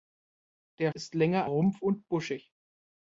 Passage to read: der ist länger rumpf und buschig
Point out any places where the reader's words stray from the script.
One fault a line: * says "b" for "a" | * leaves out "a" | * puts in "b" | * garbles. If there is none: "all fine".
all fine